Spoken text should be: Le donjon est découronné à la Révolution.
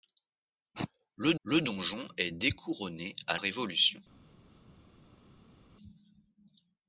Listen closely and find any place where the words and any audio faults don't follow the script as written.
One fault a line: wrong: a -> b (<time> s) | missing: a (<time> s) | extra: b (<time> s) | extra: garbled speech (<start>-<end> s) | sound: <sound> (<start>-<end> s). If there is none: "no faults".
extra: le (1.4 s)
missing: la (3.4 s)